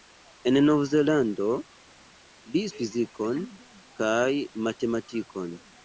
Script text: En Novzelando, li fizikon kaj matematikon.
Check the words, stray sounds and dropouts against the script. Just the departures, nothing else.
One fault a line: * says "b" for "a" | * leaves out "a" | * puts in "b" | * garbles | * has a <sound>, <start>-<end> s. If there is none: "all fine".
all fine